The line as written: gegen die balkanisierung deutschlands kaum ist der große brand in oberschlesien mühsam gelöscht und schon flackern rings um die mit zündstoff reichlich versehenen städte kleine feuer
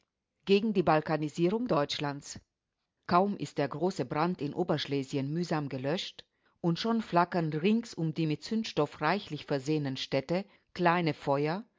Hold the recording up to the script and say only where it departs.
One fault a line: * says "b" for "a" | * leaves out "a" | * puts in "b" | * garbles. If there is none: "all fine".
all fine